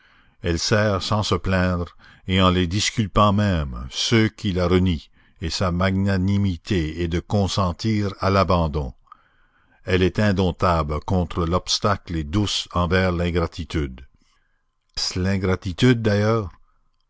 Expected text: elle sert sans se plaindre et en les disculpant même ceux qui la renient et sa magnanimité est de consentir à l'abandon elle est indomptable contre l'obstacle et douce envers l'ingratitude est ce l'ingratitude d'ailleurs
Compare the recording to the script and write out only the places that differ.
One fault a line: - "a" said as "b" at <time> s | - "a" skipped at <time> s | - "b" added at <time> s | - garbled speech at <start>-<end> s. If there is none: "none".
- "est" skipped at 14.0 s